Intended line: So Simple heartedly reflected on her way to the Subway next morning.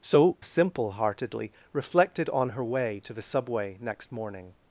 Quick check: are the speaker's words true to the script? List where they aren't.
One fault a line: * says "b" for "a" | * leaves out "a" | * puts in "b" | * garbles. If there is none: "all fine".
all fine